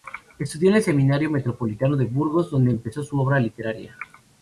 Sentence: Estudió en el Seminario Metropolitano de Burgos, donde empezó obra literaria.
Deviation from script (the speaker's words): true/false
true